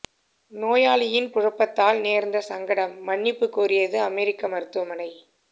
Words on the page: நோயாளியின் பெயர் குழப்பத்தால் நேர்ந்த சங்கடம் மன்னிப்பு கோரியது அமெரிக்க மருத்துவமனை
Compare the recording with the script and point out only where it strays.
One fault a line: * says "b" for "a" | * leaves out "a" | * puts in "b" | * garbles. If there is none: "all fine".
* leaves out "பெயர்"